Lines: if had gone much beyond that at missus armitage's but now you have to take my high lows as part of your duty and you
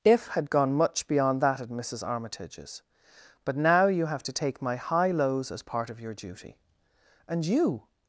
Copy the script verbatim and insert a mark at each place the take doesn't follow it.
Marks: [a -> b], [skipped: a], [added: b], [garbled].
if had gone much beyond that at missus armitage's but now you have to take my high lows as part of your duty and you